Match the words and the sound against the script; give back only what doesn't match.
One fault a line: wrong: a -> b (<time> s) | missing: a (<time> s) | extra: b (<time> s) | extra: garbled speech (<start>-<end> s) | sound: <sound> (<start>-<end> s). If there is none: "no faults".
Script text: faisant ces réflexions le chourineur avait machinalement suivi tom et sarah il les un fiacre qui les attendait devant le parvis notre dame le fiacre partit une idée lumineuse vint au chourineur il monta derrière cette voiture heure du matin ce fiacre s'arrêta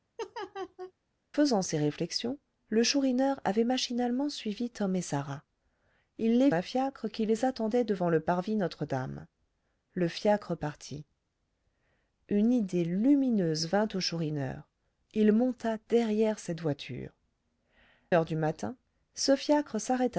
sound: laugh (0.2-0.9 s)